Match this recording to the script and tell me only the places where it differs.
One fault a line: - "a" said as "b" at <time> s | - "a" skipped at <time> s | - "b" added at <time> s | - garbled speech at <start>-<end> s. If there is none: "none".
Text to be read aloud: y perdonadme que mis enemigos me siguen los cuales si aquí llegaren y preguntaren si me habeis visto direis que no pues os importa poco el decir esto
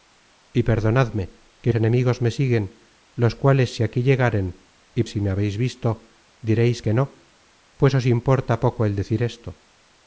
- "mis" skipped at 1.7 s
- "preguntaren" skipped at 5.0 s